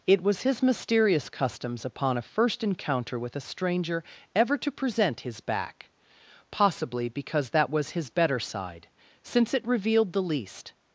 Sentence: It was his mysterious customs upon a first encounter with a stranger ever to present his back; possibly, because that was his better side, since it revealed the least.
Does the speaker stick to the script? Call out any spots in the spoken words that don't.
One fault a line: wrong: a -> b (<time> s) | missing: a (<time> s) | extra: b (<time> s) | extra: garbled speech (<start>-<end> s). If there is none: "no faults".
no faults